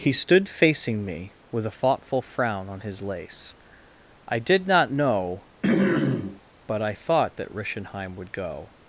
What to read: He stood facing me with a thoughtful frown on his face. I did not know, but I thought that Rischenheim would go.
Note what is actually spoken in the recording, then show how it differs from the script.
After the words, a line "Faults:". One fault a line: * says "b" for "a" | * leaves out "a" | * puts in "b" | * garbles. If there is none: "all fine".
He stood facing me with a thoughtful frown on his lace. I did not know, but I thought that Rischenheim would go.
Faults:
* says "lace" for "face"